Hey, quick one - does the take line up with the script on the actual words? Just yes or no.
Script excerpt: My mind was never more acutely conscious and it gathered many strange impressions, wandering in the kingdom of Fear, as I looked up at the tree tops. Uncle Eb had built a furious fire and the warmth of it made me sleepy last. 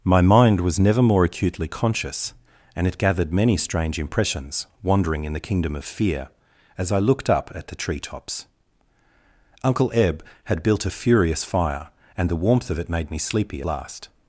yes